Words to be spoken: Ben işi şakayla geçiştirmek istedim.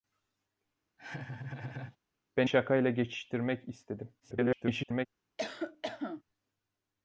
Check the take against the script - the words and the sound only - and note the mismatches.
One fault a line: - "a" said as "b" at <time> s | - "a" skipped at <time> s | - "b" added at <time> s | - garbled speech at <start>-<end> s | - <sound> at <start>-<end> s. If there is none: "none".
- laugh at 1.0-2.0 s
- "işi" skipped at 2.5 s
- garbled speech at 4.2-5.1 s
- cough at 5.4-6.2 s